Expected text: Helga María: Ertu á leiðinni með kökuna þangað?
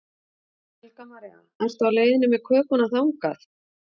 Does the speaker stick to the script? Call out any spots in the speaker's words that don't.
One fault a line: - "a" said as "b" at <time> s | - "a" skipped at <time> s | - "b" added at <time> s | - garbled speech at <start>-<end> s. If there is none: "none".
none